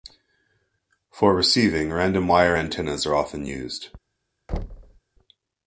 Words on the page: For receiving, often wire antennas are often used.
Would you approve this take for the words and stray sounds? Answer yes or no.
no